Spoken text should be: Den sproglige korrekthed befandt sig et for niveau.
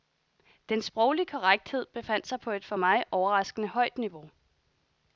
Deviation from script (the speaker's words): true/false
true